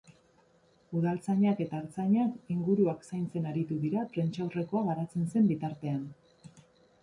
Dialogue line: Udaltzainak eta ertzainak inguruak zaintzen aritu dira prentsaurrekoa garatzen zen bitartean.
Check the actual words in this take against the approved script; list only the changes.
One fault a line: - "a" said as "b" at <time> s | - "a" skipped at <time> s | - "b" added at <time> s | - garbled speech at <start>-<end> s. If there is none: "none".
none